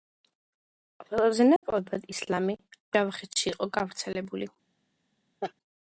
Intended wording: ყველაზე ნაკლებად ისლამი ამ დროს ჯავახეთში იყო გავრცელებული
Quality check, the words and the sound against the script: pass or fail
fail